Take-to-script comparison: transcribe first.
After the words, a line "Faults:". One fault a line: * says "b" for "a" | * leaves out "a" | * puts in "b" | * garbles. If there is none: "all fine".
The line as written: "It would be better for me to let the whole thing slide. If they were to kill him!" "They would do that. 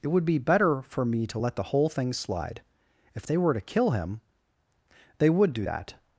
"It would be better for me to let the whole thing slide. If they were to kill him!" "They would do that.
Faults:
all fine